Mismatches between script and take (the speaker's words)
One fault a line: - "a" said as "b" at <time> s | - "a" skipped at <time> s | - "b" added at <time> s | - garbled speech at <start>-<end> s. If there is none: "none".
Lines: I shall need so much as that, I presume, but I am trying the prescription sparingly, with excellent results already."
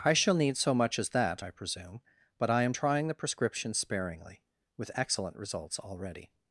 none